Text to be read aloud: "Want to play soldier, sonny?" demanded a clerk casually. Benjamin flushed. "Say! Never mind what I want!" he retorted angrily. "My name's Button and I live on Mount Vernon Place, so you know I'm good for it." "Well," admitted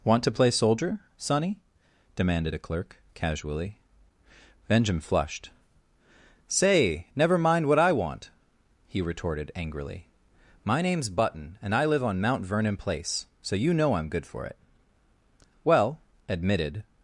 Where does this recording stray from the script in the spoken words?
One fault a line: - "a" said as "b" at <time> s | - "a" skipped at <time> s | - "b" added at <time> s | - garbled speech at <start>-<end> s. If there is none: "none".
none